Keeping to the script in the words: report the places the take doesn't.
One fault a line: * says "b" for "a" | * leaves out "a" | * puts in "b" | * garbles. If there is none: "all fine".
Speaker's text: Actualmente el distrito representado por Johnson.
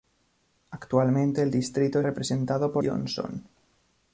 all fine